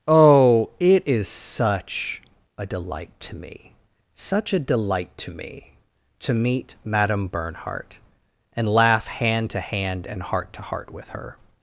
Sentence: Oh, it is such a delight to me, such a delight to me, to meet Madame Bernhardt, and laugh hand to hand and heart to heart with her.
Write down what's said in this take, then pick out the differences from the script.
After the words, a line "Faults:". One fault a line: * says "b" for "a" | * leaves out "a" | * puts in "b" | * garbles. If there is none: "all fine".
Oh, it is such a delight to me, such a delight to me, to meet Madame Bernhardt, and laugh hand to hand and heart to heart with her.
Faults:
all fine